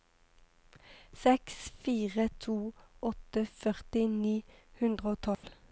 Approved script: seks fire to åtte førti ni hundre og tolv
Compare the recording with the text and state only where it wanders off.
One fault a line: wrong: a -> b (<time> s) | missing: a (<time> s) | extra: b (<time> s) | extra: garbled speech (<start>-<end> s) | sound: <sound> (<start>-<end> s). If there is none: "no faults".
sound: dropout (5.3-5.4 s)